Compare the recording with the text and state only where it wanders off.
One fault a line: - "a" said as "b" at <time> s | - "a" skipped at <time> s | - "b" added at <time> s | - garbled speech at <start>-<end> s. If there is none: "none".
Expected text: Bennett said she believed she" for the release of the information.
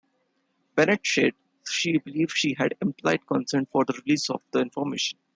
- "had implied consent" added at 2.6 s